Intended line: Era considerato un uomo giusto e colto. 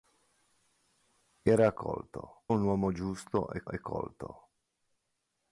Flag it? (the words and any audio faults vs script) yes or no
yes